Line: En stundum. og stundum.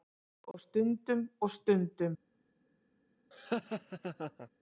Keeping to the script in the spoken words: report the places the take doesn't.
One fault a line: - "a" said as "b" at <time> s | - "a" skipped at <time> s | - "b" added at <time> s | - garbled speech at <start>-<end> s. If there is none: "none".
- "En" said as "Og" at 0.5 s